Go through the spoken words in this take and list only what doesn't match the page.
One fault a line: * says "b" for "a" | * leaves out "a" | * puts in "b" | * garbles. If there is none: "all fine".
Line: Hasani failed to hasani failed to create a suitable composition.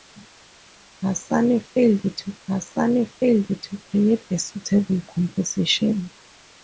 all fine